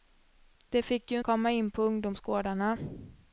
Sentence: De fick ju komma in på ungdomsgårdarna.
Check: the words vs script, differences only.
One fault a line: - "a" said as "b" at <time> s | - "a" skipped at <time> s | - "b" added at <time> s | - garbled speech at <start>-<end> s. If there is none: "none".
none